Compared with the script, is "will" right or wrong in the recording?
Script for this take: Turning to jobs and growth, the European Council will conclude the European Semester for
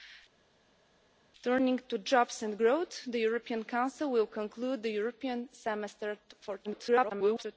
right